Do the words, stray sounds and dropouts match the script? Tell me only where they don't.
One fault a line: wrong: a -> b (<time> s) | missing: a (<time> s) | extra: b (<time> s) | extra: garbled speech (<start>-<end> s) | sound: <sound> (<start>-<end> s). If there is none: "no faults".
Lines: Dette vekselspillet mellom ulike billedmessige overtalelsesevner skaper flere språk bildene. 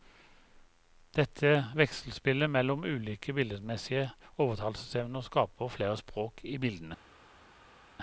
extra: i (6.4 s)